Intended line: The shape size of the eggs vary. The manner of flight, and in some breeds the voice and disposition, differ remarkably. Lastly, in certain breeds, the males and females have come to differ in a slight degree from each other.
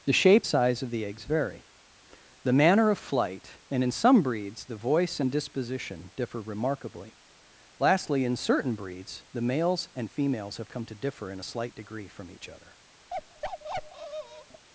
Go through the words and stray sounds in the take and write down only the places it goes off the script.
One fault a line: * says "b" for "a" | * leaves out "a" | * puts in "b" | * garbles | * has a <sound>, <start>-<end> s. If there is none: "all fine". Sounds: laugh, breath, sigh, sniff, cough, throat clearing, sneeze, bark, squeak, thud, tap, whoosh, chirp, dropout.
* has a bark, 13.1-14.7 s